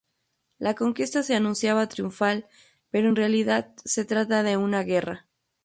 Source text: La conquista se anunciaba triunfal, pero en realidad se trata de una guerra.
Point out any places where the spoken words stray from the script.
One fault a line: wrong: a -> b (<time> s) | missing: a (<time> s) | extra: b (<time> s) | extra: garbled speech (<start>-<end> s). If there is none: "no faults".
no faults